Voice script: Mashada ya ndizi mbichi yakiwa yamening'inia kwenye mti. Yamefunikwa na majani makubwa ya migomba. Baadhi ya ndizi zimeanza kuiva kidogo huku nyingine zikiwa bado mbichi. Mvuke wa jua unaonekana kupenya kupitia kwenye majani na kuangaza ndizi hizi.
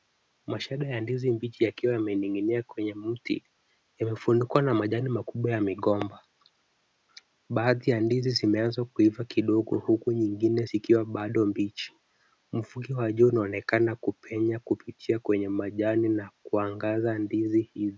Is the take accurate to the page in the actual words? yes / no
yes